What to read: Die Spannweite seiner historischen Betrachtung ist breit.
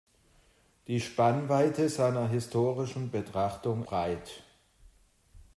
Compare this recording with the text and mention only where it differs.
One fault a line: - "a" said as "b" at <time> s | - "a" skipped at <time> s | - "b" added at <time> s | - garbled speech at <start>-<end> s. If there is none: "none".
- "ist" skipped at 3.9 s